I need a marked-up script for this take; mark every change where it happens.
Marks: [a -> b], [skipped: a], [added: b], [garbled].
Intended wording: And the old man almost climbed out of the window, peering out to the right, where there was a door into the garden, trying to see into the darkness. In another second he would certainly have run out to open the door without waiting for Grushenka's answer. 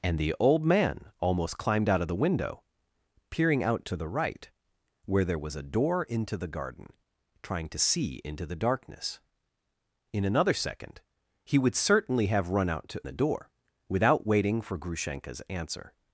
And the old man almost climbed out of the window, peering out to the right, where there was a door into the garden, trying to see into the darkness. In another second he would certainly have run out to [skipped: open] the door without waiting for Grushenka's answer.